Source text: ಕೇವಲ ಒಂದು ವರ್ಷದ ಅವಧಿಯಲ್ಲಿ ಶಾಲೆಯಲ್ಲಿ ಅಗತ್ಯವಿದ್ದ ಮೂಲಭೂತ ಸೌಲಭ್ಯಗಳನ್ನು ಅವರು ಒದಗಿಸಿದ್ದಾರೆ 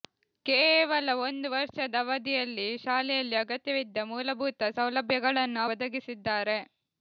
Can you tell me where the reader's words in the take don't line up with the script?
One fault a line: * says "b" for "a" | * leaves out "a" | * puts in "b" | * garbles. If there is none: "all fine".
* leaves out "ಅವರು"